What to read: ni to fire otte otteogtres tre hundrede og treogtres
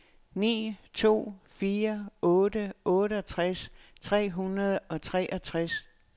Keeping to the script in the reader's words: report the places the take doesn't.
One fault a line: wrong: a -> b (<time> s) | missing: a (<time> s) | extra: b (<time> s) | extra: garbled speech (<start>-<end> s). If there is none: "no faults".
no faults